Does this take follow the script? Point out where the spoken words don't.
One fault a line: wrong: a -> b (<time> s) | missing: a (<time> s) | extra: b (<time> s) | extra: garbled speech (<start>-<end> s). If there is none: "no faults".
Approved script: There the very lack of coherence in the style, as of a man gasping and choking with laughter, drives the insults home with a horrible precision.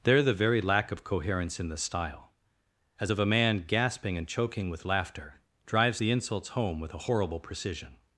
no faults